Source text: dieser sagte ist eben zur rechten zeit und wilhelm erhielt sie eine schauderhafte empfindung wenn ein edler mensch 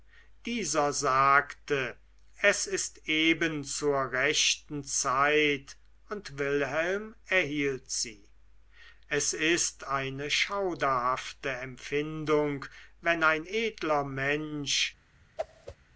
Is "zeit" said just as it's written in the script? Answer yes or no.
yes